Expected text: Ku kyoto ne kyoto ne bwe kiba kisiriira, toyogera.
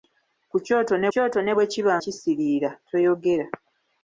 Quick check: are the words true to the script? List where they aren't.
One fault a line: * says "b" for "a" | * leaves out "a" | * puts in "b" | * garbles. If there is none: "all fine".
all fine